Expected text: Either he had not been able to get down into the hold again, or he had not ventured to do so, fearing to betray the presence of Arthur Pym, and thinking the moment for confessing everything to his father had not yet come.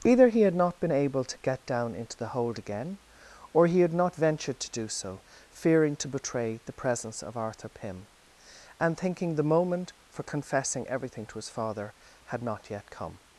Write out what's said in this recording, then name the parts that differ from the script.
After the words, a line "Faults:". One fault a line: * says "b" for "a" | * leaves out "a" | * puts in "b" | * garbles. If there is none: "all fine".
Either he had not been able to get down into the hold again, or he had not ventured to do so, fearing to betray the presence of Arthur Pym, and thinking the moment for confessing everything to his father had not yet come.
Faults:
all fine